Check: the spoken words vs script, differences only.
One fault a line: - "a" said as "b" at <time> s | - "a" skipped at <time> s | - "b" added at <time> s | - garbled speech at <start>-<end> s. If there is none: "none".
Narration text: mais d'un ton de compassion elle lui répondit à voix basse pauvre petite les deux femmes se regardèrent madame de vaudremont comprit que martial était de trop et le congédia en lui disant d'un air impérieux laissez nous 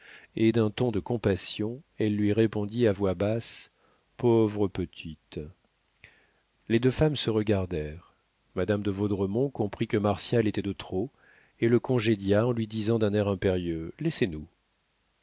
- "mais" said as "et" at 0.3 s